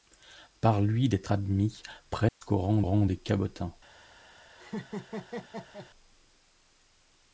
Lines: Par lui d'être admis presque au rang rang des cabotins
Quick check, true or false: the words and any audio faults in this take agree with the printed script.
false